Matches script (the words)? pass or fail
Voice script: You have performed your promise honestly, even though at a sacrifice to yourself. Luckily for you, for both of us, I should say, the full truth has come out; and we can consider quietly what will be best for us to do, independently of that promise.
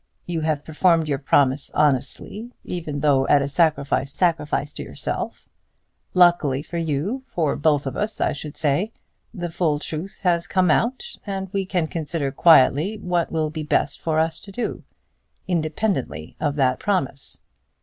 fail